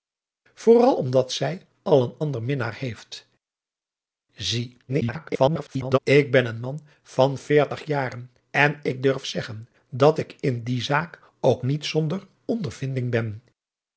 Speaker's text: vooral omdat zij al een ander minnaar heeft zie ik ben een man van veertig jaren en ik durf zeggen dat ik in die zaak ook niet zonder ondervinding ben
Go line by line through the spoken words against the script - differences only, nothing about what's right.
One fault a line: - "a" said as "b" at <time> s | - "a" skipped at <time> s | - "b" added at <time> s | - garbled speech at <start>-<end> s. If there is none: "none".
- garbled speech at 4.9-6.0 s